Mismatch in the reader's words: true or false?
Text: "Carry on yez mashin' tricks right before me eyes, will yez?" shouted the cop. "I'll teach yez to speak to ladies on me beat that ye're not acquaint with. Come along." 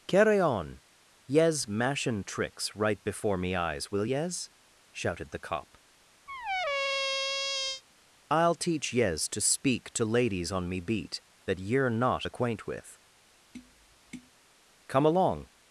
false